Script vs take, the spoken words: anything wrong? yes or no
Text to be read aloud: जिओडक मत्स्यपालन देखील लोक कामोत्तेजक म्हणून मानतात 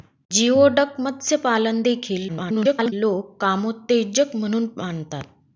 yes